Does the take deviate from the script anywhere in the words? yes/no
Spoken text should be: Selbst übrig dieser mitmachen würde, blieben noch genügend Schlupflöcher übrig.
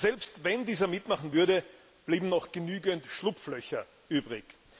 yes